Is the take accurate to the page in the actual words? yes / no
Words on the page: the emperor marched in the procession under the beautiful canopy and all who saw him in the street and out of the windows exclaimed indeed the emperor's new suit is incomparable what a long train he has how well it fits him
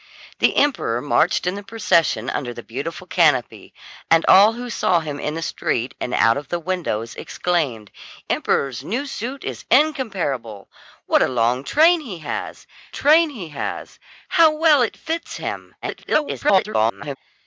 no